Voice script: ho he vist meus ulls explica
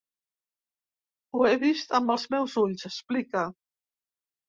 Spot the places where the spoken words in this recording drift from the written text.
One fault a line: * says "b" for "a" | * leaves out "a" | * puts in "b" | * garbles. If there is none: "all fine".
* puts in "amb els"